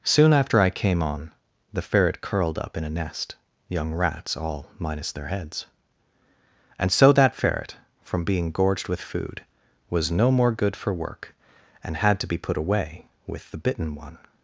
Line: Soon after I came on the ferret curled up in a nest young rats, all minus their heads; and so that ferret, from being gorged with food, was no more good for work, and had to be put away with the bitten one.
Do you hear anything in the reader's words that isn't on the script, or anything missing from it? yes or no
no